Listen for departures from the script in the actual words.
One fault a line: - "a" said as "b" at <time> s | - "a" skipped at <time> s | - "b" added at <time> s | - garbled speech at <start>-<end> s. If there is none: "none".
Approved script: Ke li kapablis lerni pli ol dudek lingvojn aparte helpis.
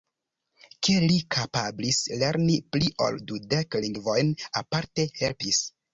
none